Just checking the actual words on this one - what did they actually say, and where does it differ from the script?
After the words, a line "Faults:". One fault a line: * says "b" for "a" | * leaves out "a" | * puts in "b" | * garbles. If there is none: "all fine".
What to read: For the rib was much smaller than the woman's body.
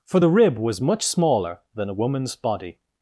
For the rib was much smaller than a woman's body.
Faults:
* says "a" for "the"